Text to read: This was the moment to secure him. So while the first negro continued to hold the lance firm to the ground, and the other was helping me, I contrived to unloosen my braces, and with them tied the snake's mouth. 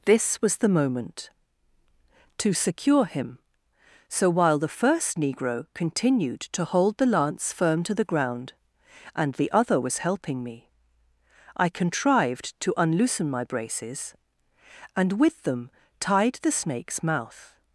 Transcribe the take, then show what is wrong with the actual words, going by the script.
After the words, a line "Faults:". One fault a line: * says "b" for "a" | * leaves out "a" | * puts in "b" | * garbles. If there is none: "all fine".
This was the moment to secure him. So while the first negro continued to hold the lance firm to the ground, and the other was helping me, I contrived to unloosen my braces, and with them tied the snake's mouth.
Faults:
all fine